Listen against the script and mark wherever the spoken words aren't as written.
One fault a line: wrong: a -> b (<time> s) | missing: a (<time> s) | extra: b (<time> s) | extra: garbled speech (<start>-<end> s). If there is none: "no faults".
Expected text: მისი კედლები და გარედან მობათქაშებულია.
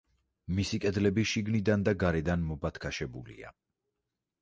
extra: შიგნიდან (1.3 s)